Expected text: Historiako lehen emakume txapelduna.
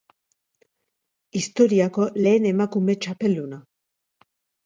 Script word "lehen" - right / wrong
right